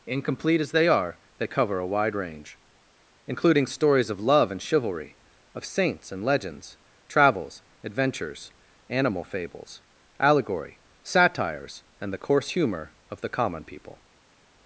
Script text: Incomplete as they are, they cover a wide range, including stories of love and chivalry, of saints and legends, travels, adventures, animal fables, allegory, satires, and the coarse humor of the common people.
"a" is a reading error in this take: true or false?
false